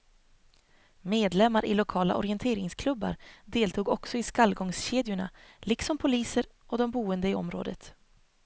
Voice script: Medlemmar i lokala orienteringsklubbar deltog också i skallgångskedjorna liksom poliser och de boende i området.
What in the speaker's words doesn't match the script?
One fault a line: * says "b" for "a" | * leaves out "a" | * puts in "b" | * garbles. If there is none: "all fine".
all fine